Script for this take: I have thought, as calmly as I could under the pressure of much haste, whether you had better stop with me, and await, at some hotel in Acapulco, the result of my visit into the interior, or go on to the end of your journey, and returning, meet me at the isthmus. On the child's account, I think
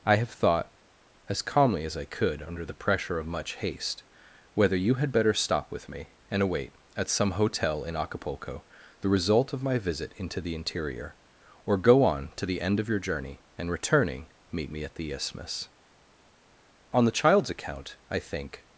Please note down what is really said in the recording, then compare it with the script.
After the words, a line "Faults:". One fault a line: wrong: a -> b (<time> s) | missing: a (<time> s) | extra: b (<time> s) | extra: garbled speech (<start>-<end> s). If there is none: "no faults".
I have thought, as calmly as I could under the pressure of much haste, whether you had better stop with me, and await, at some hotel in Acapulco, the result of my visit into the interior, or go on to the end of your journey, and returning, meet me at the isthmus. On the child's account, I think
Faults:
no faults